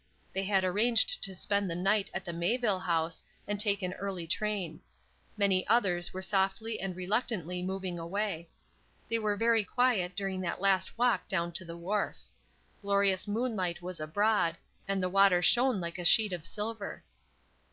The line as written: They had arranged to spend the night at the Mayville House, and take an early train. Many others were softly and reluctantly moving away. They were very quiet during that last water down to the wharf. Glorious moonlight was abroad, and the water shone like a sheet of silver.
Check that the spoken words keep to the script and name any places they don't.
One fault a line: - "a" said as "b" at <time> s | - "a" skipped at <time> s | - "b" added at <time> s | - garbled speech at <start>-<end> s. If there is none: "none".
- "water" said as "walk" at 11.0 s